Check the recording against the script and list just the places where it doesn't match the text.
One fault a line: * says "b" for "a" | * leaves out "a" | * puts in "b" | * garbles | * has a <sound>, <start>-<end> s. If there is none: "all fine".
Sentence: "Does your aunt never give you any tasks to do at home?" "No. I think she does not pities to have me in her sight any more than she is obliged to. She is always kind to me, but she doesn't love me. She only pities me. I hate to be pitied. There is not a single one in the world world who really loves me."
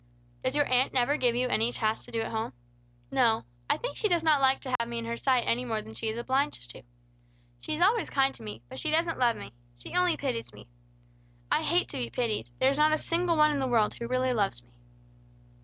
* says "like" for "pities"
* has a dropout, 4.8-4.8 s
* leaves out "world"